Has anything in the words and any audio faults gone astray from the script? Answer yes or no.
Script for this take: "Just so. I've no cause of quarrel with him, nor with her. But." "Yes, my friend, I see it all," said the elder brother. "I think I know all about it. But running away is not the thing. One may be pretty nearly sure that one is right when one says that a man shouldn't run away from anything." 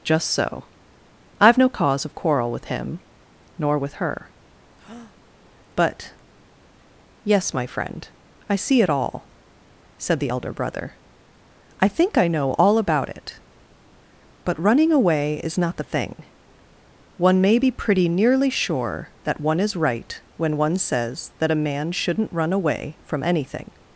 yes